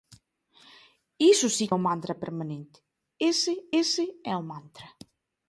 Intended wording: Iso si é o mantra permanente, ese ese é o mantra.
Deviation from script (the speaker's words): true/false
false